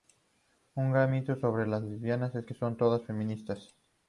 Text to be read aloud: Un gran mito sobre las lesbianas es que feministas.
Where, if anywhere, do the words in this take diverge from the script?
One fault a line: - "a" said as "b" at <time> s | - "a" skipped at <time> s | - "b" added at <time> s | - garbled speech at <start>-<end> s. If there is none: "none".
- "son todas" added at 2.5 s